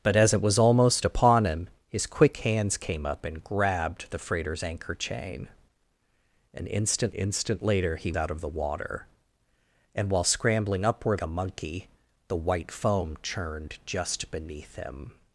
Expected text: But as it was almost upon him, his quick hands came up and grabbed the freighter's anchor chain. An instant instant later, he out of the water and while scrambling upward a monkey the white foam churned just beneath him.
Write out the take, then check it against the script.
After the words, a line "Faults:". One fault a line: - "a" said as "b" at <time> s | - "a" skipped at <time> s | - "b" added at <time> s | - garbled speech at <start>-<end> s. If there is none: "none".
But as it was almost upon him, his quick hands came up and grabbed the freighter's anchor chain. An instant instant later, he out of the water and while scrambling upward a monkey the white foam churned just beneath him.
Faults:
none